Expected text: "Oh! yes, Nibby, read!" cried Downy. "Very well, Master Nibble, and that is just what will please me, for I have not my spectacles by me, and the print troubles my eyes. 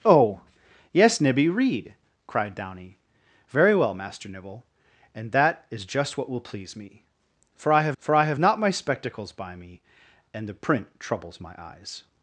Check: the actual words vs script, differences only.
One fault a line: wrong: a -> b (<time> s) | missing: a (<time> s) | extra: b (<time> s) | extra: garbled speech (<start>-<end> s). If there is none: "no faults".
extra: for I have (8.0 s)